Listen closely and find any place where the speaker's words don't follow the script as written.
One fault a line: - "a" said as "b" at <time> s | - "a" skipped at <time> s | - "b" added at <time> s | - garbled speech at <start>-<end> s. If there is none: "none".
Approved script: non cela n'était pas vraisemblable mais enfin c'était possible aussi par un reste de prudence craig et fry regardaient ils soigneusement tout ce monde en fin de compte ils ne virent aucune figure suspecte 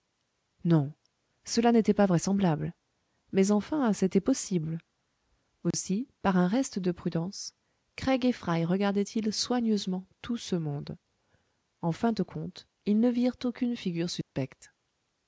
none